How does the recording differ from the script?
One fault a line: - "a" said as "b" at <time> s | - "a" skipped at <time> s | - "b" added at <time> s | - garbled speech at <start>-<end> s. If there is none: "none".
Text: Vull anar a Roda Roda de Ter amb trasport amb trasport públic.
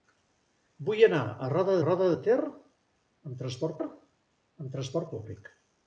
none